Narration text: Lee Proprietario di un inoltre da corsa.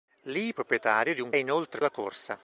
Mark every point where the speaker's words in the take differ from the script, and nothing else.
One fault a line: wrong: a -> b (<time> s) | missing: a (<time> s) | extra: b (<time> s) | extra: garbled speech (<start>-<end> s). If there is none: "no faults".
no faults